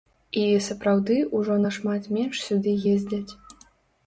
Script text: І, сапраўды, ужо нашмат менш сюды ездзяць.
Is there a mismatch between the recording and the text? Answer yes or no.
no